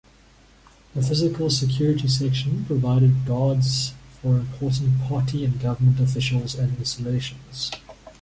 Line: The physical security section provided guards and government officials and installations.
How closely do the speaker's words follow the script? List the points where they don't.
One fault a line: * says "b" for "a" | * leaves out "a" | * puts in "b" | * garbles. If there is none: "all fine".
* puts in "for important party"